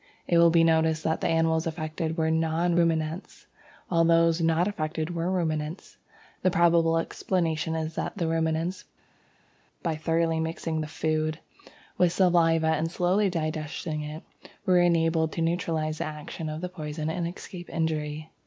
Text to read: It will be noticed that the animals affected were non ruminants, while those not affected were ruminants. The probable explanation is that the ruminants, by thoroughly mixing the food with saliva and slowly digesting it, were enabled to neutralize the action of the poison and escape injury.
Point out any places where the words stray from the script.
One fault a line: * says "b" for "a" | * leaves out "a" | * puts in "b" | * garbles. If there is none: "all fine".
all fine